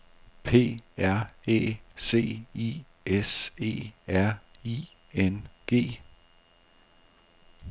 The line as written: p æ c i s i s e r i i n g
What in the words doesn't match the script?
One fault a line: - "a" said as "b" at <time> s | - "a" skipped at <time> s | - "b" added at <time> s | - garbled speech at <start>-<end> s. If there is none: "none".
- "r" added at 1.0 s
- "i s" skipped at 3.5 s
- "i" skipped at 4.9 s